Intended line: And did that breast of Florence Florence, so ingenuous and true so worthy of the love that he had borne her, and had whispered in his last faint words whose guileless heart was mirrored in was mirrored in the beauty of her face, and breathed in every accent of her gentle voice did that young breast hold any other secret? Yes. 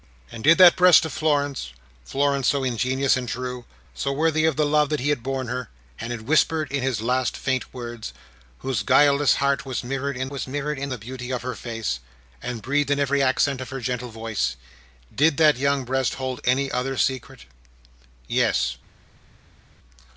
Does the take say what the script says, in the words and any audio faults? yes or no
yes